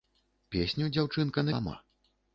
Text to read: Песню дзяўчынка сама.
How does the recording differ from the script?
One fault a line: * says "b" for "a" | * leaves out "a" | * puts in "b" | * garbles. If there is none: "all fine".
all fine